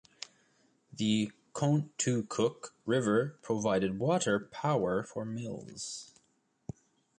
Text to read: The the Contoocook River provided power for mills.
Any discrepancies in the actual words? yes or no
yes